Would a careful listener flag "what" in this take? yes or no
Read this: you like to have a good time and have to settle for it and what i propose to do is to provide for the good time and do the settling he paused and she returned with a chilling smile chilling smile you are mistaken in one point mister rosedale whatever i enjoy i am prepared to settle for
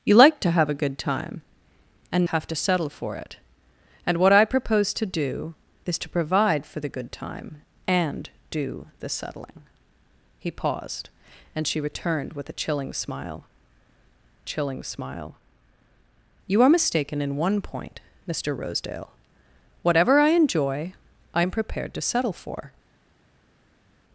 no